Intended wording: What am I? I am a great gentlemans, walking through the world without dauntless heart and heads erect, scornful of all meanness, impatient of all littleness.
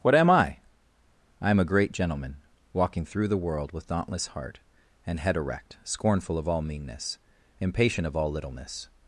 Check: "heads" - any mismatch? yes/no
yes